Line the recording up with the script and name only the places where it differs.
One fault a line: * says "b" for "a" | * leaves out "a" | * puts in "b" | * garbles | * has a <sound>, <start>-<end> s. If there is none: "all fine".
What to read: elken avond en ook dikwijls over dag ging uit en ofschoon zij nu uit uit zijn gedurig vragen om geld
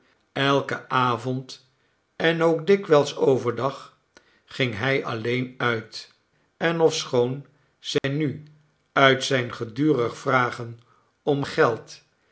* puts in "hij alleen"
* has a dropout, 8.0-8.0 s
* leaves out "uit"